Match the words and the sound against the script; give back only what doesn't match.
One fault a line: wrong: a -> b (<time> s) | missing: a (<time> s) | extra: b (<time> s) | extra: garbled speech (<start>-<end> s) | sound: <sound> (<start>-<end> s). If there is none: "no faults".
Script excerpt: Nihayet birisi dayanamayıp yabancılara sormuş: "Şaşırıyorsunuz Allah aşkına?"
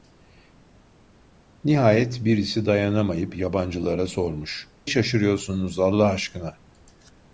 no faults